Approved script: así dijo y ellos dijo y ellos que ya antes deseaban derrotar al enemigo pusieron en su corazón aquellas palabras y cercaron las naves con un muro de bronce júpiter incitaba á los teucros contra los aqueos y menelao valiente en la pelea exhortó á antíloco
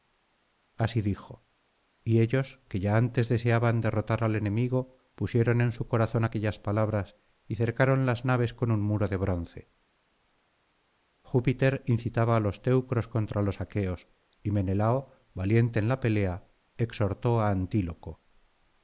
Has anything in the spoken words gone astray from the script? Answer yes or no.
yes